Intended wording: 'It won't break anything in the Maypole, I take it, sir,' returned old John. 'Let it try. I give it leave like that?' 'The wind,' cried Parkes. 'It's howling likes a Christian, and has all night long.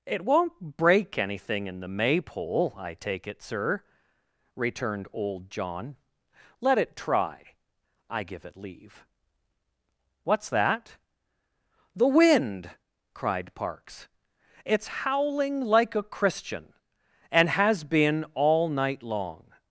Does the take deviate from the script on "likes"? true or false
true